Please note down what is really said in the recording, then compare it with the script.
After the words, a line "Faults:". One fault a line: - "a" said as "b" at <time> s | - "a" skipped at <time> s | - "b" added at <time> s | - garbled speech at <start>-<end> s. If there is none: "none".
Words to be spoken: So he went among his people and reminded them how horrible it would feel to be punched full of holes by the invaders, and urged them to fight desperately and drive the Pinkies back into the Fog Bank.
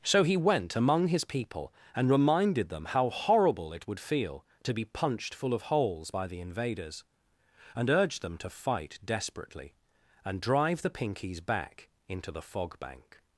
So he went among his people and reminded them how horrible it would feel to be punched full of holes by the invaders, and urged them to fight desperately and drive the Pinkies back into the Fog Bank.
Faults:
none